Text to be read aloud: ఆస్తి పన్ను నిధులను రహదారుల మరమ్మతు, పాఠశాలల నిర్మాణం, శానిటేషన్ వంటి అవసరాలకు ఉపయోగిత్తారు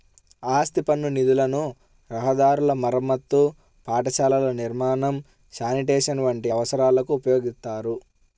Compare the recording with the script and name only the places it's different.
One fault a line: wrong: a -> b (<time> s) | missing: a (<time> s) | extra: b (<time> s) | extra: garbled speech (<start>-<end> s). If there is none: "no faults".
no faults